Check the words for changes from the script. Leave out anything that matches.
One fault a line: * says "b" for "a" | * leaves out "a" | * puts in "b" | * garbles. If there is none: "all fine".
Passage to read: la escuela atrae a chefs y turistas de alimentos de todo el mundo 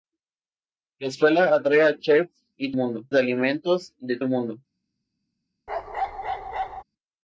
* says "mundo" for "turistas"
* leaves out "todo"